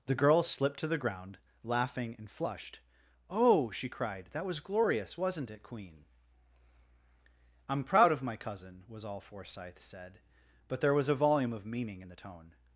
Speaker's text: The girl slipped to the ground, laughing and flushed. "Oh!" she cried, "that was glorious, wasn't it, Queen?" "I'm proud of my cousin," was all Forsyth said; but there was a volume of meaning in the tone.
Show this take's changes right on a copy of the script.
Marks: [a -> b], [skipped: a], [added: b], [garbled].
The girl slipped to the ground, laughing and flushed. "Oh!" she cried, "that was glorious, wasn't it, Queen?" "I'm proud of my cousin," was all Forsyth said; but there was a volume of meaning in the tone.